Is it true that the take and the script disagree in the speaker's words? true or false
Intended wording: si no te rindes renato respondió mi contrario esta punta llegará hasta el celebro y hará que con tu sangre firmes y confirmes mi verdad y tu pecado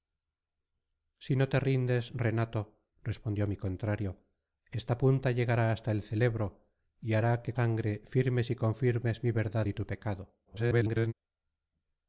true